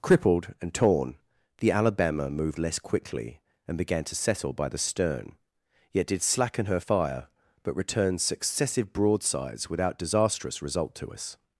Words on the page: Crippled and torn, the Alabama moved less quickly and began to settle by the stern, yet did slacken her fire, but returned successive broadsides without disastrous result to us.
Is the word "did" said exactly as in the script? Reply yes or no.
yes